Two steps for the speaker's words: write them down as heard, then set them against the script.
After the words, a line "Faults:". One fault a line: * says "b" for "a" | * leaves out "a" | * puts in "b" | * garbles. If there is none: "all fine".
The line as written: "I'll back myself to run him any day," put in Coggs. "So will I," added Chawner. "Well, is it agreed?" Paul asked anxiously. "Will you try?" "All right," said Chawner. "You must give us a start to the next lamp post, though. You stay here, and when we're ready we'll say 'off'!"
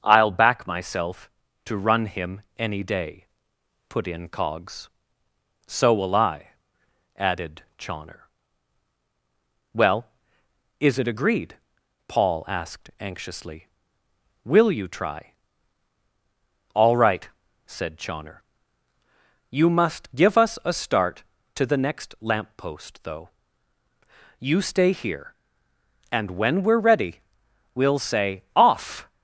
"I'll back myself to run him any day," put in Coggs. "So will I," added Chawner. "Well, is it agreed?" Paul asked anxiously. "Will you try?" "All right," said Chawner. "You must give us a start to the next lamp post, though. You stay here, and when we're ready we'll say 'off'!"
Faults:
all fine